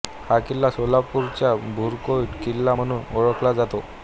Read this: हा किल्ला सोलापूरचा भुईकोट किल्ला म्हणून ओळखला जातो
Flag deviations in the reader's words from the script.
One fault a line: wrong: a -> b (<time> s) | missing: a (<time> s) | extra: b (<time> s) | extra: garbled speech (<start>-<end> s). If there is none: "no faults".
no faults